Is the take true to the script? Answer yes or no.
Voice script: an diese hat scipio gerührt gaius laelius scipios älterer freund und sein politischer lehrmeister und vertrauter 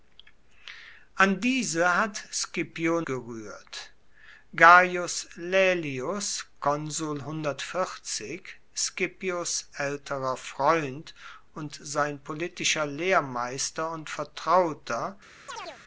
yes